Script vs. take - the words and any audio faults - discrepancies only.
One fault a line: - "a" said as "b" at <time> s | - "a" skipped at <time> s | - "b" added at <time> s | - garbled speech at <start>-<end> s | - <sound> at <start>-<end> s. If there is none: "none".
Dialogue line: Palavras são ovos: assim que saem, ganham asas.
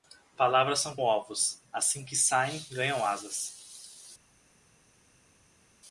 none